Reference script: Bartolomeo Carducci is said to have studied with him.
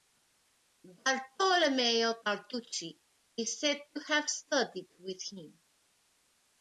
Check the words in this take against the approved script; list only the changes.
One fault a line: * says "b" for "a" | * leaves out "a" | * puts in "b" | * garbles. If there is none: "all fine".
all fine